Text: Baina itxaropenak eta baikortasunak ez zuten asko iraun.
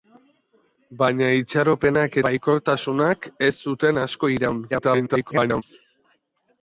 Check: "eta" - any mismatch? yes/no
yes